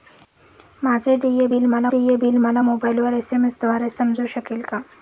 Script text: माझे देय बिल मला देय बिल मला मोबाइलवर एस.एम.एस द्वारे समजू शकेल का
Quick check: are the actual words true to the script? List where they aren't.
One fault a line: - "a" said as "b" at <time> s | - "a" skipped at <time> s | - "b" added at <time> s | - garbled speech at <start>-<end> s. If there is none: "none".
none